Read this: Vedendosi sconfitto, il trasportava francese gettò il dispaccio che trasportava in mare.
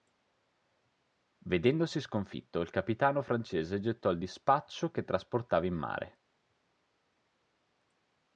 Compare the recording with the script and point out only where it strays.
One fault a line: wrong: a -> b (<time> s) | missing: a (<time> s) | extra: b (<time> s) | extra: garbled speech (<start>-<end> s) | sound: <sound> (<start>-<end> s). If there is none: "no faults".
wrong: trasportava -> capitano (2.7 s)